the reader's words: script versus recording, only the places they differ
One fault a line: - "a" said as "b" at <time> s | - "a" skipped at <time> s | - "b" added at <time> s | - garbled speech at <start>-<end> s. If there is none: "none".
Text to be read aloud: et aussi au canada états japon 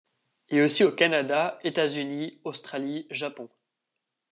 - "unis australie" added at 1.9 s